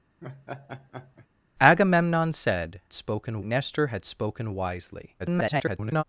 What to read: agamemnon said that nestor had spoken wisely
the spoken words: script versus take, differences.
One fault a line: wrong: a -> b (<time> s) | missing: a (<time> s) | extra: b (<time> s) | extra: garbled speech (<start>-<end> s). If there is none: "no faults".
wrong: that -> spoken (2.9 s)
extra: garbled speech (5.2-6.0 s)